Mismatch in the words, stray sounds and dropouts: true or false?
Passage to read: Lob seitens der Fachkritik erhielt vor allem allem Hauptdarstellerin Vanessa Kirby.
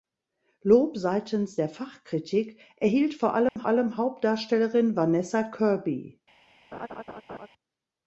true